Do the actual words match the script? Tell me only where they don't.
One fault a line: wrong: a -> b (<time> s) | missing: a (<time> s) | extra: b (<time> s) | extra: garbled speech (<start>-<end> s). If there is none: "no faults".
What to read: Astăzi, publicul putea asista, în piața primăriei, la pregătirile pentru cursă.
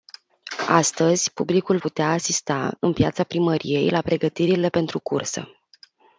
no faults